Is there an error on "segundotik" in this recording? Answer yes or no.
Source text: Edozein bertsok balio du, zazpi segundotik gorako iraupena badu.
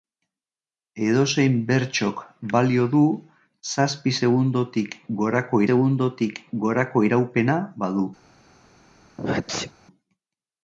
no